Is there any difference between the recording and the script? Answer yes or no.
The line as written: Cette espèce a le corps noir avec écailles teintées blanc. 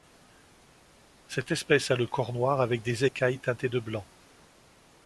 yes